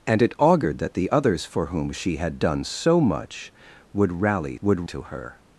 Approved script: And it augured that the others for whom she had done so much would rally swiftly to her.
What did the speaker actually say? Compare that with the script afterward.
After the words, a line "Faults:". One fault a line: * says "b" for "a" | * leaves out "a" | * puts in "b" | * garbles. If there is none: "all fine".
And it augured that the others for whom she had done so much would rally would to her.
Faults:
* says "would" for "swiftly"